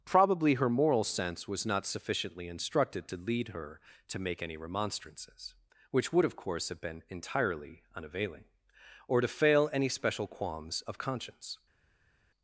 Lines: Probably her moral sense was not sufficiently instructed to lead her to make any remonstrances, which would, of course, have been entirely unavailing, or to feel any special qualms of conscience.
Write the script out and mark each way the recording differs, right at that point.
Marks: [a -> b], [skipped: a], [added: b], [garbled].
Probably her moral sense was not sufficiently instructed to lead her to make any remonstrances, which would, of course, have been entirely unavailing, or to [feel -> fail] any special qualms of conscience.